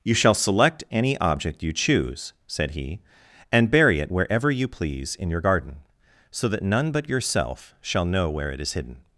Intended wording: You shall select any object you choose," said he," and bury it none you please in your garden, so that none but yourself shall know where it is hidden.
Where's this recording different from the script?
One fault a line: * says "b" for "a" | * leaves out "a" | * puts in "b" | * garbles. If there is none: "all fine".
* says "wherever" for "none"